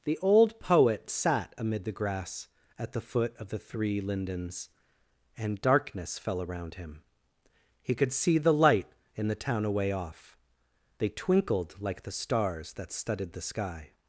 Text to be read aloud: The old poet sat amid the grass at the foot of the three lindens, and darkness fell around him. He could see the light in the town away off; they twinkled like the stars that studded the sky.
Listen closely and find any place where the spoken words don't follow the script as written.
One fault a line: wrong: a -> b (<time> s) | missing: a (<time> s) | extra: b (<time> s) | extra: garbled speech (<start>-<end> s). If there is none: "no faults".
no faults